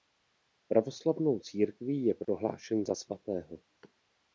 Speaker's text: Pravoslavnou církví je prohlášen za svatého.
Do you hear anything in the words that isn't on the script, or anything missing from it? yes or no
no